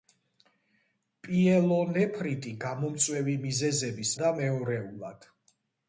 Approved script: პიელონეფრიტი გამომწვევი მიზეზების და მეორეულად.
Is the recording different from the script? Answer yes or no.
no